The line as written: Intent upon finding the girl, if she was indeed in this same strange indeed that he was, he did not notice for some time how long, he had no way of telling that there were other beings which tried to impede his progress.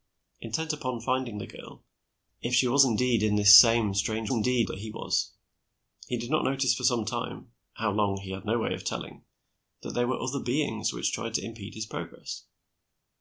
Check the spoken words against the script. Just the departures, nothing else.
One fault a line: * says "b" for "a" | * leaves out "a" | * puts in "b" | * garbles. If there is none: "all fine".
all fine